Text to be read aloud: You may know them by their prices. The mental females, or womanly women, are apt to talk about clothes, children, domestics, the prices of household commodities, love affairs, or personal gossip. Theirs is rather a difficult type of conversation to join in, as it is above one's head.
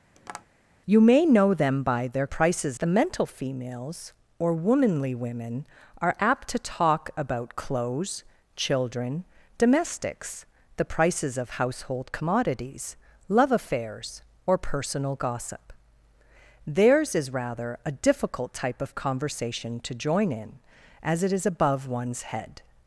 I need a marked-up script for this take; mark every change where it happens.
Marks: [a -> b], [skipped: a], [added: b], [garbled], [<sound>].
[tap] You may know them by their prices. The mental females, or womanly women, are apt to talk about clothes, children, domestics, the prices of household commodities, love affairs, or personal gossip. Theirs is rather a difficult type of conversation to join in, as it is above one's head.